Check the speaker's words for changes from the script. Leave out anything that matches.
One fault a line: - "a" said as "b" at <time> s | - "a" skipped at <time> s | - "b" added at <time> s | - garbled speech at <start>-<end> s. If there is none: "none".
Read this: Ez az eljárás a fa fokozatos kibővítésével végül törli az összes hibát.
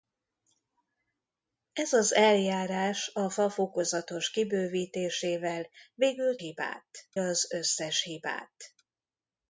- "törli" said as "hibát" at 6.4 s